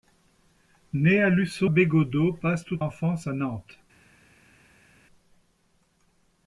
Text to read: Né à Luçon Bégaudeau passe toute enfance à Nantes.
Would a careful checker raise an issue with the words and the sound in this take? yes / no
no